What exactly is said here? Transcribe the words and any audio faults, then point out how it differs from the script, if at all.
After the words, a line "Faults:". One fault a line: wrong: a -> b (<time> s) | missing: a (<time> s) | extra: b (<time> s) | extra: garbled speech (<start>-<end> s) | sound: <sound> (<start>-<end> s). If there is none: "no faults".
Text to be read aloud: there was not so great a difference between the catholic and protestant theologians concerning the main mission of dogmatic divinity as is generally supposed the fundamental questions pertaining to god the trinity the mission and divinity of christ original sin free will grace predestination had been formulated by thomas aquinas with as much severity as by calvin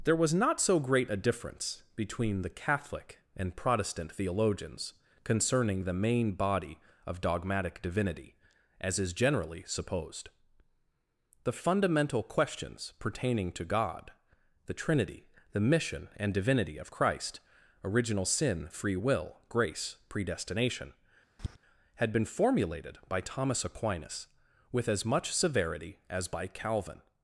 there was not so great a difference between the catholic and protestant theologians concerning the main body of dogmatic divinity as is generally supposed the fundamental questions pertaining to god the trinity the mission and divinity of christ original sin free will grace predestination had been formulated by thomas aquinas with as much severity as by calvin
Faults:
wrong: mission -> body (6.3 s)
sound: tap (21.4-21.6 s)